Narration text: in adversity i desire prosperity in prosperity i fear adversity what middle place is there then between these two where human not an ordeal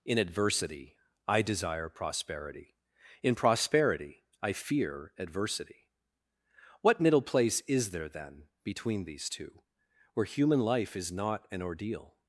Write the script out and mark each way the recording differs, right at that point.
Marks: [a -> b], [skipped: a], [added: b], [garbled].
in adversity i desire prosperity in prosperity i fear adversity what middle place is there then between these two where human [added: life is] not an ordeal